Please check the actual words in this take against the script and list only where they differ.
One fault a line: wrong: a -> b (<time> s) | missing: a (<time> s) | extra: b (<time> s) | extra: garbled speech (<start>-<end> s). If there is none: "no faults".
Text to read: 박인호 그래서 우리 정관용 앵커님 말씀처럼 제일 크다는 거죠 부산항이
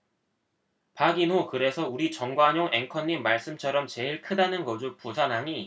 no faults